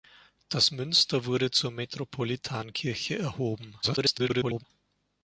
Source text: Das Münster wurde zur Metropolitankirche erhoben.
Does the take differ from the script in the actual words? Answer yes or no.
yes